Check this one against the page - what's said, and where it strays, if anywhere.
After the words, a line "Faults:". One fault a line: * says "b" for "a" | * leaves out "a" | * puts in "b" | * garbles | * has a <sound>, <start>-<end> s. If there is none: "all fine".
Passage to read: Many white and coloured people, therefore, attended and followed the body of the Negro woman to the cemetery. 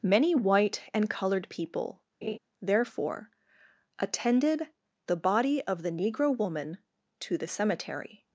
Many white and coloured people, therefore, attended the body of the Negro woman to the cemetery.
Faults:
* has a laugh, 2.2-2.4 s
* leaves out "and followed"